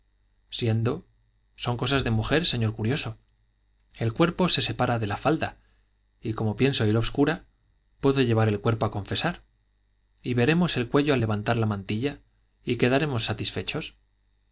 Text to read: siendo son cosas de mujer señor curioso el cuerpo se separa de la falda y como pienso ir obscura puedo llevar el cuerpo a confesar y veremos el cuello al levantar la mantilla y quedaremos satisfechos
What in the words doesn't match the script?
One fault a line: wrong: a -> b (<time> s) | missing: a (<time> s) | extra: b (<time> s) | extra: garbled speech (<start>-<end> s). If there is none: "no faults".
no faults